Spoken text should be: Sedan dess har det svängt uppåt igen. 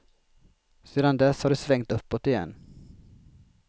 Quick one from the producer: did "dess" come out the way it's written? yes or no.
yes